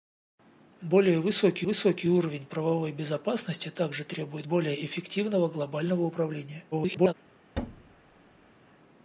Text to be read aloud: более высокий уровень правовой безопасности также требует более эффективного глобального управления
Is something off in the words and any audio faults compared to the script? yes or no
yes